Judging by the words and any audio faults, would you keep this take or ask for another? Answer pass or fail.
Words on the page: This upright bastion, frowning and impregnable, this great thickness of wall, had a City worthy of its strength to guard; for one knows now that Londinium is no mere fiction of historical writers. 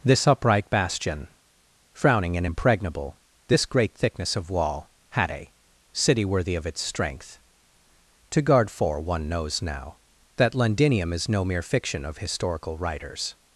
pass